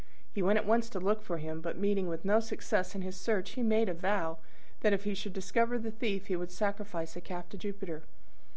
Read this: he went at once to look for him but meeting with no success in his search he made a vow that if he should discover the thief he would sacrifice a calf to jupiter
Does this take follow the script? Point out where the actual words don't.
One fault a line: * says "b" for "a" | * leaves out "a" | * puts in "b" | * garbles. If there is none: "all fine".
all fine